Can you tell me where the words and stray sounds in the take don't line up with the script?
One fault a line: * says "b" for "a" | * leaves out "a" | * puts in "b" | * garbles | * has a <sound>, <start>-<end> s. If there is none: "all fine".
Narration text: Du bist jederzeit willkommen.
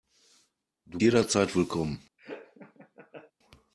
* leaves out "bist"
* has a laugh, 2.2-3.3 s